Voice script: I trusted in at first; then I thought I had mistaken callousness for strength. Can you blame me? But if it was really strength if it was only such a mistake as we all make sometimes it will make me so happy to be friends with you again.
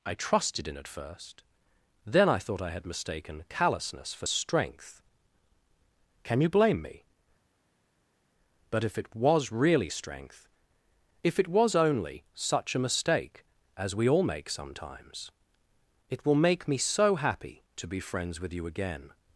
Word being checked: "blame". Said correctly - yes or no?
yes